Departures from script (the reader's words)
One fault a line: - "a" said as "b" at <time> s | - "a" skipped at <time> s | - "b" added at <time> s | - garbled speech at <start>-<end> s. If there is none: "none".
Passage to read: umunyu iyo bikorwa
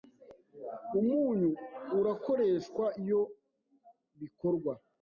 - "urakoreshwa" added at 2.0 s